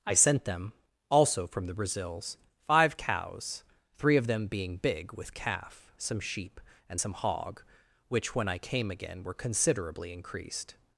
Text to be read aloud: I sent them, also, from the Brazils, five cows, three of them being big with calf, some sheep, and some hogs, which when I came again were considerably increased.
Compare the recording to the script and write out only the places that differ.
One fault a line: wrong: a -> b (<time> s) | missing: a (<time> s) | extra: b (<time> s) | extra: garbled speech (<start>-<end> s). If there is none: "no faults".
wrong: hogs -> hog (7.1 s)